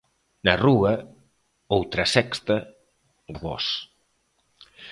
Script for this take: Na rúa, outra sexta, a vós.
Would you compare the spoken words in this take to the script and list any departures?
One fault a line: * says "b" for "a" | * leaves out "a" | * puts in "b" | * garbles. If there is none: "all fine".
all fine